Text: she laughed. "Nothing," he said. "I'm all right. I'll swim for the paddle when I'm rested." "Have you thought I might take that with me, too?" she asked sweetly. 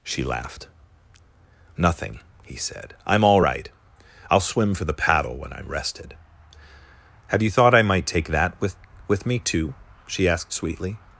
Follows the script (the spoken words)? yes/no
no